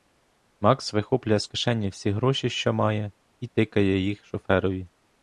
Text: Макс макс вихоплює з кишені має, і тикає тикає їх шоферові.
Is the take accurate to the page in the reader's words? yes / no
no